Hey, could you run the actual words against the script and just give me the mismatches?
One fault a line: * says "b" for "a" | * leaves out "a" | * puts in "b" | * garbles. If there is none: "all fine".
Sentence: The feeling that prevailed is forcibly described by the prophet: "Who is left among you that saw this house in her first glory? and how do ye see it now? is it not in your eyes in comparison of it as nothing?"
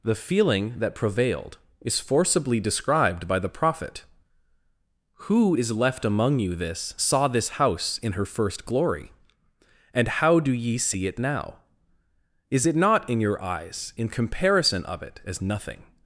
* says "this" for "that"